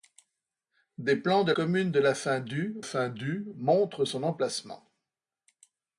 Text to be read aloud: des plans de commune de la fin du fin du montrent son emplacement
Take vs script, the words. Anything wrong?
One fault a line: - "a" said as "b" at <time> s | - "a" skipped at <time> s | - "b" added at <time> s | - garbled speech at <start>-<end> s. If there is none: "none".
none